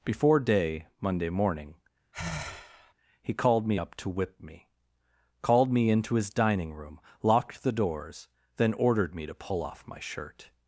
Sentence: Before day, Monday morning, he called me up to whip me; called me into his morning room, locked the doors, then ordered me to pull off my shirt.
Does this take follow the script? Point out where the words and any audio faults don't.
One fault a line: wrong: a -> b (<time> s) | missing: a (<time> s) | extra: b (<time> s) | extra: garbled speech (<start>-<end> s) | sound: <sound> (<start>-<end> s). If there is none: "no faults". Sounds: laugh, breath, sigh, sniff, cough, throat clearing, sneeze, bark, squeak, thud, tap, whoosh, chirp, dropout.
sound: sigh (2.1-2.9 s)
wrong: morning -> dining (6.3 s)